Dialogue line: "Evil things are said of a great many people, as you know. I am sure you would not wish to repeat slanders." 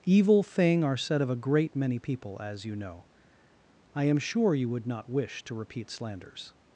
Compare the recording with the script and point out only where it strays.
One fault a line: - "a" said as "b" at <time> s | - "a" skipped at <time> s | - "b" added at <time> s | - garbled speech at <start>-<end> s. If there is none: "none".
- "things" said as "thing" at 0.4 s